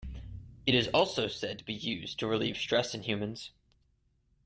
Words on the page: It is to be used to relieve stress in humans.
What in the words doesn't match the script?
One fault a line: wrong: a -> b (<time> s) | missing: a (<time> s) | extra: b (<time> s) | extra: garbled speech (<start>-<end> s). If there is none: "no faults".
extra: also said (0.9 s)